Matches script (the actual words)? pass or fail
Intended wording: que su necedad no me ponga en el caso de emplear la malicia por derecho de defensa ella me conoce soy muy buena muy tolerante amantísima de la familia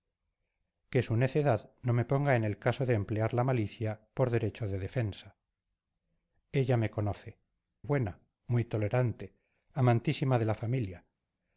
fail